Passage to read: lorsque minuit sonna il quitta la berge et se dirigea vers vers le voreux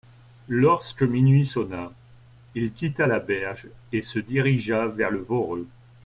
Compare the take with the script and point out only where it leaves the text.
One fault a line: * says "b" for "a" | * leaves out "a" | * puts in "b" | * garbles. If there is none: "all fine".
* leaves out "vers"